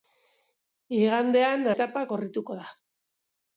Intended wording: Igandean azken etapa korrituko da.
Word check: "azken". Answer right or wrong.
wrong